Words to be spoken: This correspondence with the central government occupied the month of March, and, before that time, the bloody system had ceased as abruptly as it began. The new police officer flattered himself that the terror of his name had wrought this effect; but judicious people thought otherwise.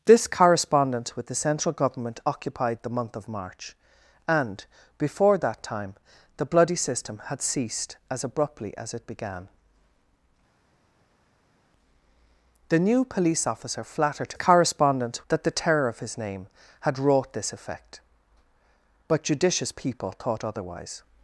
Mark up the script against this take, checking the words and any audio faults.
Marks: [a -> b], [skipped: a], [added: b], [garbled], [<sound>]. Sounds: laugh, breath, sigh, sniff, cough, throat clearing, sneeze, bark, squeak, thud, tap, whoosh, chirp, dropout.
This correspondence with the central government occupied the month of March, and, before that time, the bloody system had ceased as abruptly as it began. The new police officer flattered [himself -> correspondence] that the terror of his name had wrought this effect; but judicious people thought otherwise.